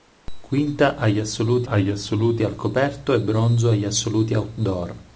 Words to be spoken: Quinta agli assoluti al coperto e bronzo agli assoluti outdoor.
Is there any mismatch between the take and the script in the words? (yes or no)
yes